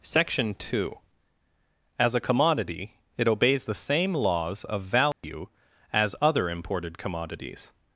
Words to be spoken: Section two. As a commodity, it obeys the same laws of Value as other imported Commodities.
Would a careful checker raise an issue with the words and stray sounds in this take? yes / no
yes